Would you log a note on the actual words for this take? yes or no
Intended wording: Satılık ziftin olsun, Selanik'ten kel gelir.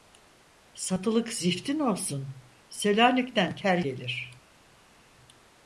no